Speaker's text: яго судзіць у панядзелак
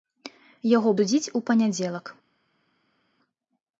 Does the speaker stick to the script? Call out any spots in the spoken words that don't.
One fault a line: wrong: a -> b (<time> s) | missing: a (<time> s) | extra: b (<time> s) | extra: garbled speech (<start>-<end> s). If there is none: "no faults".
no faults